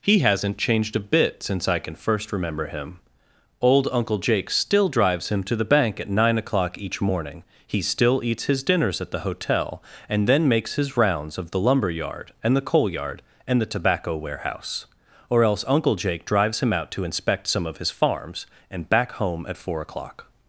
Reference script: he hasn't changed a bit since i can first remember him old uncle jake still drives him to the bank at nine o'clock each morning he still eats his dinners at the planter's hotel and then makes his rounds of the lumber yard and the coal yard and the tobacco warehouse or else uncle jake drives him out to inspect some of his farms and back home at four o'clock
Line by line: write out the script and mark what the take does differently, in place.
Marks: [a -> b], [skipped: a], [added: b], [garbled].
he hasn't changed a bit since i can first remember him old uncle jake still drives him to the bank at nine o'clock each morning he still eats his dinners at the [skipped: planter's] hotel and then makes his rounds of the lumber yard and the coal yard and the tobacco warehouse or else uncle jake drives him out to inspect some of his farms and back home at four o'clock